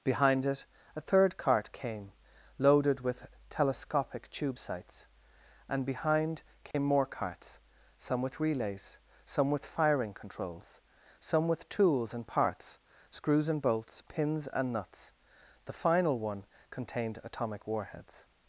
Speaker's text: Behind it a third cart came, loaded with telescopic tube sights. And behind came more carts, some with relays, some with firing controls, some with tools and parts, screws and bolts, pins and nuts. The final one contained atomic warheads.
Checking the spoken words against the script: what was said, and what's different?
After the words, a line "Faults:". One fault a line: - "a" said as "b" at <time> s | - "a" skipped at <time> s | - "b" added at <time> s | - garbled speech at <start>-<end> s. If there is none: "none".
Behind it a third cart came, loaded with telescopic tube sights. And behind came more carts, some with relays, some with firing controls, some with tools and parts, screws and bolts, pins and nuts. The final one contained atomic warheads.
Faults:
none